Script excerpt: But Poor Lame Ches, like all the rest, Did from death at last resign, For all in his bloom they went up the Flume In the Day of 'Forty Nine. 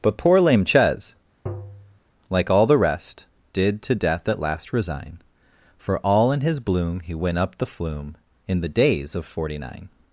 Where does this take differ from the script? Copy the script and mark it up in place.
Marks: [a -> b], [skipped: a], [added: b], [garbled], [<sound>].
But Poor Lame Ches, [tap] like all the rest, Did [from -> to] death at last resign, For all in his bloom [they -> he] went up the Flume In the [Day -> Days] of 'Forty Nine.